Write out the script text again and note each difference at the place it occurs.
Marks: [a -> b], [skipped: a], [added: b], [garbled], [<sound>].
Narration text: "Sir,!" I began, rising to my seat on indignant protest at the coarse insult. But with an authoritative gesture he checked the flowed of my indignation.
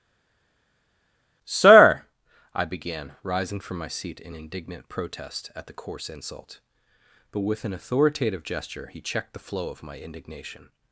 "Sir,!" I began, rising [to -> from] my seat [on -> in] indignant protest at the coarse insult. But with an authoritative gesture he checked the [flowed -> flow] of my indignation.